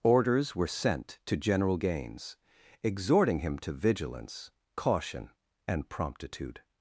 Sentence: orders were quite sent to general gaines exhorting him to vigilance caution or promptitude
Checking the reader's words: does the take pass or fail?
fail